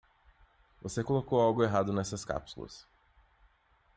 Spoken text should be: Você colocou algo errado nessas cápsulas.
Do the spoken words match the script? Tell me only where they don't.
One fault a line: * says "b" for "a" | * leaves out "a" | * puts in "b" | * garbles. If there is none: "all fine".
all fine